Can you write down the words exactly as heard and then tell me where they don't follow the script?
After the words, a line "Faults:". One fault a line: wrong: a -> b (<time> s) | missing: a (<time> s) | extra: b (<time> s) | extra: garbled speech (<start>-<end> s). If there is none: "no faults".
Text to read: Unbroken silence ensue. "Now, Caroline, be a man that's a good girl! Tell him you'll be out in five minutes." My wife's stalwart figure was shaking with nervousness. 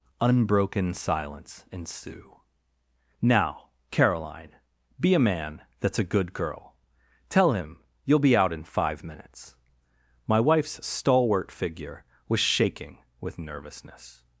Unbroken silence ensue. "Now, Caroline, be a man that's a good girl! Tell him you'll be out in five minutes." My wife's stalwart figure was shaking with nervousness.
Faults:
no faults